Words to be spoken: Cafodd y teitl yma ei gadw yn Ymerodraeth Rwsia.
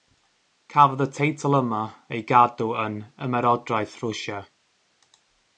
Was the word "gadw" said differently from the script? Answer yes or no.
no